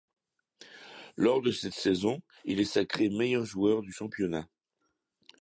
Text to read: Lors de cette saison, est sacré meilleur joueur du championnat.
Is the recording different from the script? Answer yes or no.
yes